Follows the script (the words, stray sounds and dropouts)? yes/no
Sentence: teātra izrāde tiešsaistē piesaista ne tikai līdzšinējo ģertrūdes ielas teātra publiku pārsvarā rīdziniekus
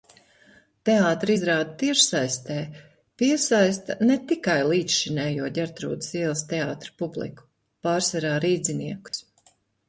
no